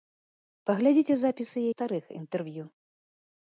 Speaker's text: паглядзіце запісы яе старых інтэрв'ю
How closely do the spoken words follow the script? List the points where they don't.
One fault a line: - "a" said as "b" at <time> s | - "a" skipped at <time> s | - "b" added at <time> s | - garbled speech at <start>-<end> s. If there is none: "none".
- "яе" skipped at 1.6 s